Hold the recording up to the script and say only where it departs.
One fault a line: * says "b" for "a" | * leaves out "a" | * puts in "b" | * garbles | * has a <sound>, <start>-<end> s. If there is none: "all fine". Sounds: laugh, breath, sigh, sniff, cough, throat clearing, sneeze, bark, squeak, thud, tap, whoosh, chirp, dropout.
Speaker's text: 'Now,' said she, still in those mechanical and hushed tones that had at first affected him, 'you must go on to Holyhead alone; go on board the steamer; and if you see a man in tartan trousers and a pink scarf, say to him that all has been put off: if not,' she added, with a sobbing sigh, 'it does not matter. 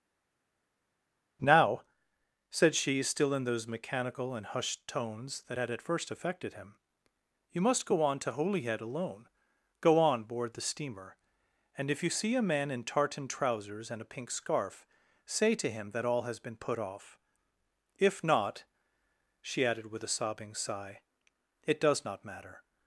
all fine